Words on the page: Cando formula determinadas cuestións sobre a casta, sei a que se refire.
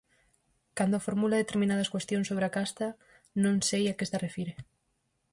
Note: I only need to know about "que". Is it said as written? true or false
true